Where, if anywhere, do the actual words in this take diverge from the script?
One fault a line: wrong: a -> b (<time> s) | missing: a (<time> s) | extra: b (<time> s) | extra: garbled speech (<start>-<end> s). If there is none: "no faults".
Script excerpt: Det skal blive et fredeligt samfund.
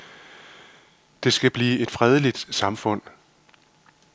no faults